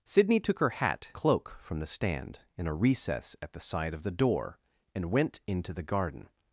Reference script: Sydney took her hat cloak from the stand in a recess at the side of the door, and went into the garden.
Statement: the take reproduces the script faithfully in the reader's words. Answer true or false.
true